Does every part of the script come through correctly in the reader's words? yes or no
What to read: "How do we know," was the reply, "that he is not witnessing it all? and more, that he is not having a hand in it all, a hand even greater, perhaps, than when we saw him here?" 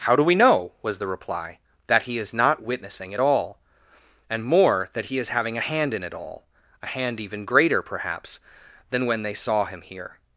no